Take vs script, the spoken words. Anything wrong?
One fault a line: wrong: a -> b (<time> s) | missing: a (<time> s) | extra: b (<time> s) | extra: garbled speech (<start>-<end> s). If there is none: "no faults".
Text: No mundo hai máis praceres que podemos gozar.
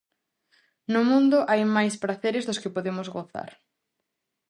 extra: dos (2.5 s)